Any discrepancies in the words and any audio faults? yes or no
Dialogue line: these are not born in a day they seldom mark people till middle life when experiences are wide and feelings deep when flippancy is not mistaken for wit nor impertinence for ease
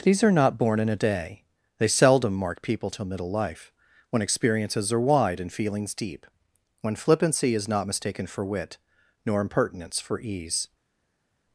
no